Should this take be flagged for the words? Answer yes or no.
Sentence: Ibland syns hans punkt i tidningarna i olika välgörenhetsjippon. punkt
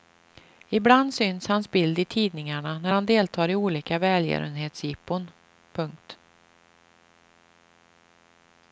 yes